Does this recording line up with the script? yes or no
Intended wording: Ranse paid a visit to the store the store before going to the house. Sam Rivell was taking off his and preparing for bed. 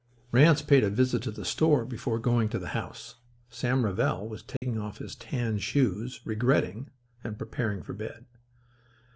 no